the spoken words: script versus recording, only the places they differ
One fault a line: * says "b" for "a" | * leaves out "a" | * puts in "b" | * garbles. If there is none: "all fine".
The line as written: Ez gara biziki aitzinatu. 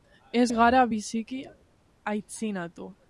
all fine